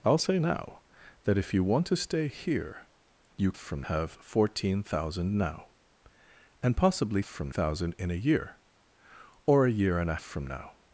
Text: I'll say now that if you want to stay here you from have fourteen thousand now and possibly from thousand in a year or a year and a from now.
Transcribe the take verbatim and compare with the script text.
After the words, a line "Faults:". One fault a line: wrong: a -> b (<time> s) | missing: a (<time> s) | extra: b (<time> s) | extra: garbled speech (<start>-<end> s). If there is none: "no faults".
I'll say now that if you want to stay here you from have fourteen thousand now and possibly from thousand in a year or a year and a from now.
Faults:
no faults